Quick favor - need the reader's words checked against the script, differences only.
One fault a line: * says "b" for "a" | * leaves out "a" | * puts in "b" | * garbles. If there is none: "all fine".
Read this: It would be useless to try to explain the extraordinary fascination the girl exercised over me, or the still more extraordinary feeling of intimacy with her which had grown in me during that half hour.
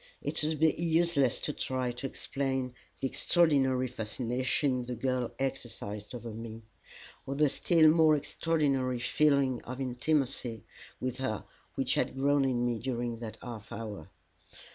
all fine